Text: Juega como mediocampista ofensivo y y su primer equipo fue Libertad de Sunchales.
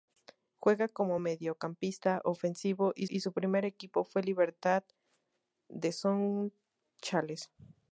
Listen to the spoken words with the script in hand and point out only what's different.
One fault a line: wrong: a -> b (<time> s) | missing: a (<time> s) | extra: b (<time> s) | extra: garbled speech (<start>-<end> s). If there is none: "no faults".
no faults